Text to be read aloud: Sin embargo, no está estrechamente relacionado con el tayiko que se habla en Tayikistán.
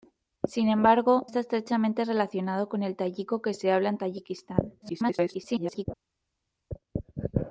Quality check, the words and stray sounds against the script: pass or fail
fail